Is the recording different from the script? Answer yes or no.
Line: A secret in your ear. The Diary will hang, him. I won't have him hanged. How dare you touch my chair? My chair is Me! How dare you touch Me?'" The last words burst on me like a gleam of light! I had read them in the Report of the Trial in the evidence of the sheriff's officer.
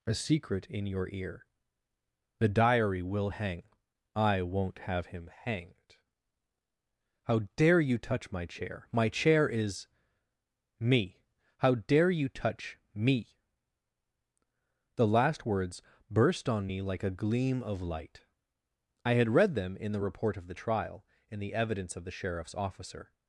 yes